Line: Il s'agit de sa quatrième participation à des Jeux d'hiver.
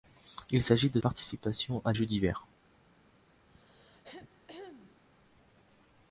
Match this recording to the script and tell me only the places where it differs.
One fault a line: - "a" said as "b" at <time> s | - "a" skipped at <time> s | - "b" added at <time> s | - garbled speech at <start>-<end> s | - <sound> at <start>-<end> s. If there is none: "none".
- "sa quatrième" skipped at 1.0 s
- "des" skipped at 1.9 s
- throat clearing at 3.5-5.0 s